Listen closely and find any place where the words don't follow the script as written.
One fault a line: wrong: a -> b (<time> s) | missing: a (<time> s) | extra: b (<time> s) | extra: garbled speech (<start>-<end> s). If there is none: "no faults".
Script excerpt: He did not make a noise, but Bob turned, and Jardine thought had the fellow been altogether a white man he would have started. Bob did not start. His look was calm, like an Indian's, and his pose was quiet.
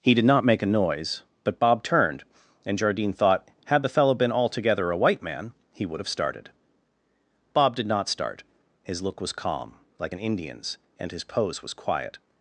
no faults